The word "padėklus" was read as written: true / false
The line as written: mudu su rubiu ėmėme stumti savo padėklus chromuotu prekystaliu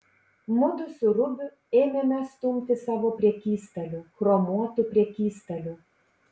false